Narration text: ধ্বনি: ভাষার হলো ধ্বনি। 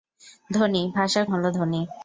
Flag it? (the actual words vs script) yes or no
no